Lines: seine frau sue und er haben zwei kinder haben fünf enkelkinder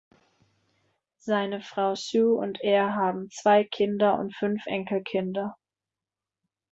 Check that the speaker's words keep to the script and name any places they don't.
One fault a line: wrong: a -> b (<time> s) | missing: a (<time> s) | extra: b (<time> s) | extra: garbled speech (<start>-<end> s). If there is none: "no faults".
wrong: haben -> und (4.2 s)